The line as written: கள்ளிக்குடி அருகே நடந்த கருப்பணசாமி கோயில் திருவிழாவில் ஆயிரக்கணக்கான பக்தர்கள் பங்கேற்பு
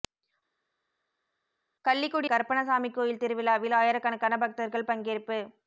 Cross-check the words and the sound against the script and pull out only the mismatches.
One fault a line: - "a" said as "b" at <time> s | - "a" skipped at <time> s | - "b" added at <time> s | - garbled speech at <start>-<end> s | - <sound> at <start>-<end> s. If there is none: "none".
- "அருகே நடந்த" skipped at 2.3 s